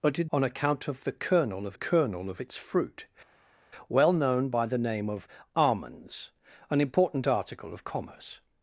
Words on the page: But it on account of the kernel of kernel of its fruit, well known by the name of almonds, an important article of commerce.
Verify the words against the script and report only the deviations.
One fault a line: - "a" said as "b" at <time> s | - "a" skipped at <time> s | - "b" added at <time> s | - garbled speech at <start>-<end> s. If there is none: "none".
none